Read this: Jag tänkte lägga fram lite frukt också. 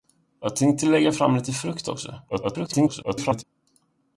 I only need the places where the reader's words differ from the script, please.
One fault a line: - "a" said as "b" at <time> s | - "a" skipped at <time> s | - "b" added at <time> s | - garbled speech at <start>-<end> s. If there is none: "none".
- garbled speech at 2.3-3.4 s